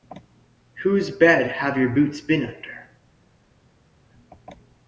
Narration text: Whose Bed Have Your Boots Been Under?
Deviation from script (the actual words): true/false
false